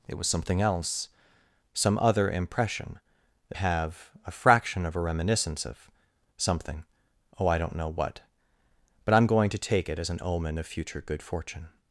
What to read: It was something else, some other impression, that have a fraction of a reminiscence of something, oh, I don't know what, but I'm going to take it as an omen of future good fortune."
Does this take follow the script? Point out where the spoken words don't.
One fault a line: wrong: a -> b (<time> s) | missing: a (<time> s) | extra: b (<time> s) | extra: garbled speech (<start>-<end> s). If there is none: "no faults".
no faults